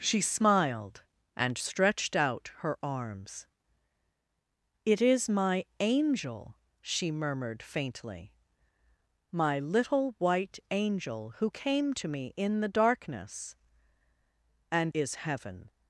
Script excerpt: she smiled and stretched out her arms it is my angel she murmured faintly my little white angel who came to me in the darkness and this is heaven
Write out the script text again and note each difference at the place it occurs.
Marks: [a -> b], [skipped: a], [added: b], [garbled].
she smiled and stretched out her arms it is my angel she murmured faintly my little white angel who came to me in the darkness and [skipped: this] is heaven